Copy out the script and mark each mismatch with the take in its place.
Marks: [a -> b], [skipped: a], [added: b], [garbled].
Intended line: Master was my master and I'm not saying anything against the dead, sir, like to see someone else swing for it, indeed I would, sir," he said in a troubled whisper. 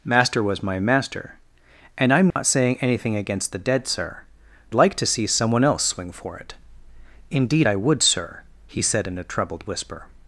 Master was my master and I'm not saying anything against the dead, sir, like to see someone else swing for it, indeed I would, sir," he said in a troubled whisper.